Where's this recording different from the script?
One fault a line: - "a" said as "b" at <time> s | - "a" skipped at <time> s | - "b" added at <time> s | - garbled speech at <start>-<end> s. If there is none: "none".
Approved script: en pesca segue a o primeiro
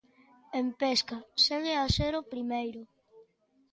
- "ser" added at 2.0 s